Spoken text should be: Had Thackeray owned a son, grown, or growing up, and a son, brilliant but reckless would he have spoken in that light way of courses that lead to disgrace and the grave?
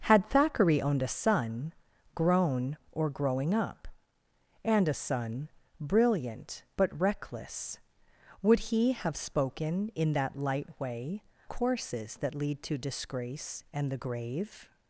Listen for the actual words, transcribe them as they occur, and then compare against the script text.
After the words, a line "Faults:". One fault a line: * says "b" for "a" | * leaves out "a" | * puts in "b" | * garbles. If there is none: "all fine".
Had Thackeray owned a son, grown, or growing up, and a son, brilliant but reckless would he have spoken in that light way courses that lead to disgrace and the grave?
Faults:
* leaves out "of"